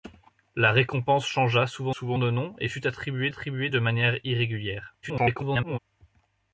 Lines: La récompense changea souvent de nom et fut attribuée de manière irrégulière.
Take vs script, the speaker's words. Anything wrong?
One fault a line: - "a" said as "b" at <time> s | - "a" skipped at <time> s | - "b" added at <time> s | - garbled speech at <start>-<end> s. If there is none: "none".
- "souvent" added at 1.9 s
- "attribuée" added at 3.3 s
- garbled speech at 5.0-5.8 s